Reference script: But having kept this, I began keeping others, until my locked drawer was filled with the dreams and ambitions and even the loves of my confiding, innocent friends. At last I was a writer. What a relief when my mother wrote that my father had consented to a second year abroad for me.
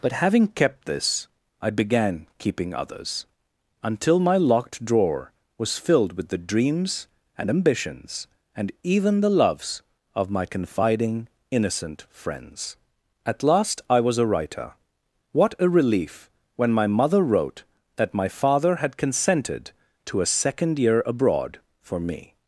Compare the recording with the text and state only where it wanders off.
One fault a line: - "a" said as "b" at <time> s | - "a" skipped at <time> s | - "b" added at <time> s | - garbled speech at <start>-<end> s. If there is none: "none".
none